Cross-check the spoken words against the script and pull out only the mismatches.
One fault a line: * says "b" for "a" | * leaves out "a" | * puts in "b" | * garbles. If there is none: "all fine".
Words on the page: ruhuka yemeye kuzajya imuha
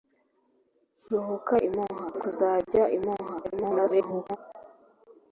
* says "imuha" for "yemeye"
* garbles